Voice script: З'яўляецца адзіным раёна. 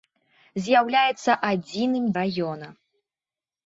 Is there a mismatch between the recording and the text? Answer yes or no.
no